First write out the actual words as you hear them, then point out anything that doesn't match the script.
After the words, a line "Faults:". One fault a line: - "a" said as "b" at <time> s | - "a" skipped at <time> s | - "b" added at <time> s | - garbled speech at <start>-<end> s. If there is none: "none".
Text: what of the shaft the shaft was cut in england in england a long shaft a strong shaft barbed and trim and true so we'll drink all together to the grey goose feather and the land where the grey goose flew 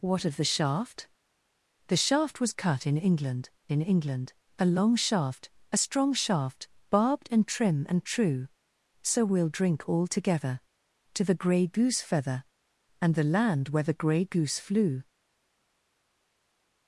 what of the shaft the shaft was cut in england in england a long shaft a strong shaft barbed and trim and true so we'll drink all together to the grey goose feather and the land where the grey goose flew
Faults:
none